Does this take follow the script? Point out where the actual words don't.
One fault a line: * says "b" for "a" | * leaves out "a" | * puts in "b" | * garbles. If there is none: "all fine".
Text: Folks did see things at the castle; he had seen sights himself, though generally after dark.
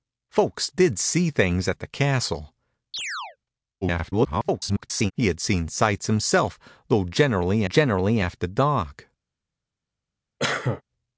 * garbles
* puts in "generally"